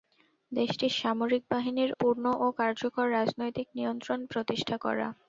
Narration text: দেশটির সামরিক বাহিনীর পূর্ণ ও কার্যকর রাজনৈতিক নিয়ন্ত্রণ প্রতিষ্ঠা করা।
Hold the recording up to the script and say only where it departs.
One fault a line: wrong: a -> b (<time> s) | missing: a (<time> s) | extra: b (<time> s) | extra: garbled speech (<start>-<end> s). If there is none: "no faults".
no faults